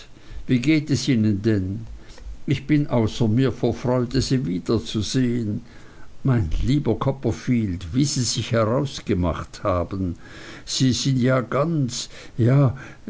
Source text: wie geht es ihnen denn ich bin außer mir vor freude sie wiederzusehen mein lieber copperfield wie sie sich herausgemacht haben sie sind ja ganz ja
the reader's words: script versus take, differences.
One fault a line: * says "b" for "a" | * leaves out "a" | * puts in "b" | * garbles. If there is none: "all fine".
all fine